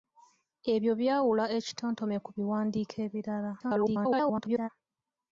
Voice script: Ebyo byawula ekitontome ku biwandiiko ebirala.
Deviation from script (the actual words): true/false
true